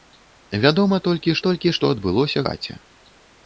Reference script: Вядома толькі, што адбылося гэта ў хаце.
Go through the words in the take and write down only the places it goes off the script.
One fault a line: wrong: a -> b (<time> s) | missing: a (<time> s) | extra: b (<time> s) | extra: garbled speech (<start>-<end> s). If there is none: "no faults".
extra: толькі (1.5 s)
missing: гэта ў (2.4 s)